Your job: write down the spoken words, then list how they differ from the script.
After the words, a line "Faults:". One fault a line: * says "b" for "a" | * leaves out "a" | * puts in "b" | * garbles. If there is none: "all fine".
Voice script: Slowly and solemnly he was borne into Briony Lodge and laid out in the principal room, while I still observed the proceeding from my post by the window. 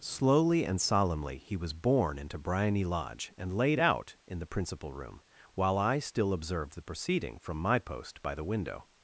Slowly and solemnly he was borne into Briony Lodge and laid out in the principal room, while I still observed the proceeding from my post by the window.
Faults:
all fine